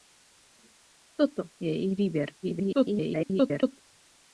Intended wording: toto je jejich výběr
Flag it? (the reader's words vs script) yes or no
yes